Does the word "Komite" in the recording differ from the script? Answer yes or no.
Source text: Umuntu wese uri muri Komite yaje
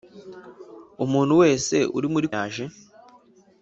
yes